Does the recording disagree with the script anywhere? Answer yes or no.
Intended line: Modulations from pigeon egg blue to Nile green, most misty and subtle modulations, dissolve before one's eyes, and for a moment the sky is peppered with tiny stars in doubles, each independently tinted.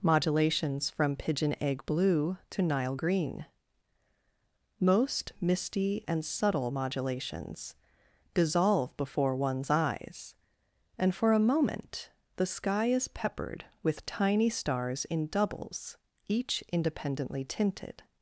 no